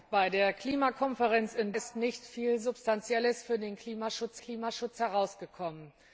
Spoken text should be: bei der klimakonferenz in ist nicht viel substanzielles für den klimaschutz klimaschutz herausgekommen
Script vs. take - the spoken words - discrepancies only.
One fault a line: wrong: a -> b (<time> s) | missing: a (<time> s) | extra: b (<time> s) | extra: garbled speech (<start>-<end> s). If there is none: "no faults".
no faults